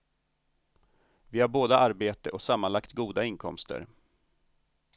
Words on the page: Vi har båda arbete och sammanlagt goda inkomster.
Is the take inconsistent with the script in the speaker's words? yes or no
no